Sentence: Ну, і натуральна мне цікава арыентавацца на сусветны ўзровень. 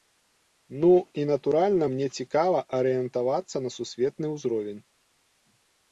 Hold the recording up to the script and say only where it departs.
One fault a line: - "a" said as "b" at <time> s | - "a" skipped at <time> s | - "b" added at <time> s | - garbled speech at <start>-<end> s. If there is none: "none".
none